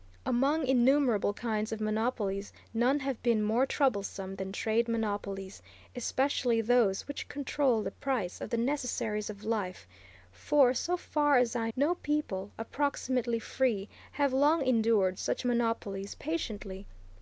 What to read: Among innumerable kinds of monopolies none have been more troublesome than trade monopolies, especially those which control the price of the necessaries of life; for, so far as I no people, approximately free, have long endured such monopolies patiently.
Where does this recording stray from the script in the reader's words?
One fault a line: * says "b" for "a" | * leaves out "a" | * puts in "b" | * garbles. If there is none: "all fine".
all fine